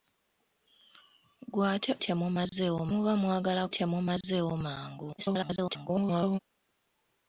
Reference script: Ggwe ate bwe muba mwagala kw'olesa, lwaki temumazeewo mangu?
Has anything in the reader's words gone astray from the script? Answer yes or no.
yes